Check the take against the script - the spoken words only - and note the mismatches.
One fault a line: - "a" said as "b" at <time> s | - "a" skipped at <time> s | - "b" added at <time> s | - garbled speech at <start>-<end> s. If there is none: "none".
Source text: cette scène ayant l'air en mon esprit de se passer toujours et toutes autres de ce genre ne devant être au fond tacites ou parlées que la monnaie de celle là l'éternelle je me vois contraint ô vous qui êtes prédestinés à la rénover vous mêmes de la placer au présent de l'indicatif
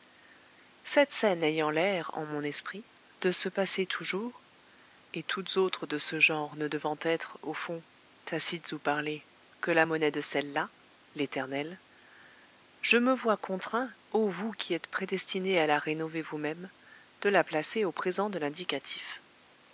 none